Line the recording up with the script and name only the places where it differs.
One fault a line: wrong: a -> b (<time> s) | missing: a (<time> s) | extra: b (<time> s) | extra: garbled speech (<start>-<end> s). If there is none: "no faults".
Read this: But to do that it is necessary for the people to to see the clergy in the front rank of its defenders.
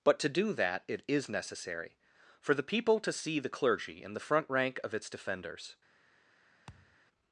missing: to (3.1 s)